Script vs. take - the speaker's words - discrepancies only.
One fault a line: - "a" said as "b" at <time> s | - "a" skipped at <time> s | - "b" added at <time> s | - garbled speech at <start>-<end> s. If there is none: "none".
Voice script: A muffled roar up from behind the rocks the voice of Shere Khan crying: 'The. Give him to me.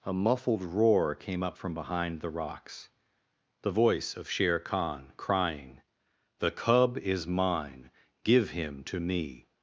- "came" added at 1.1 s
- "cub is mine" added at 6.5 s